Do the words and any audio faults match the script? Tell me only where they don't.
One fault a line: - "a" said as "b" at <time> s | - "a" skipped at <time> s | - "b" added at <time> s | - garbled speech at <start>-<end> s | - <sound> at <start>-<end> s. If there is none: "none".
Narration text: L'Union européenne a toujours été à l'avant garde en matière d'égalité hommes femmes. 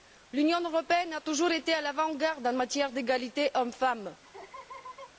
- laugh at 4.2-5.1 s